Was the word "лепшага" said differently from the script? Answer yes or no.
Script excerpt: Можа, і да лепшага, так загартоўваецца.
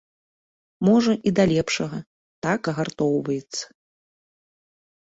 no